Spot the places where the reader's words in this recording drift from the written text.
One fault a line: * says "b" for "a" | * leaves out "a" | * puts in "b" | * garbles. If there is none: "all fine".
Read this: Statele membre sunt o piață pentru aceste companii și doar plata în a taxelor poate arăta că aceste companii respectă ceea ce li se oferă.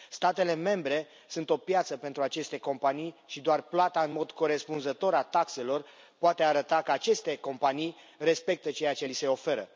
* puts in "mod corespunzător"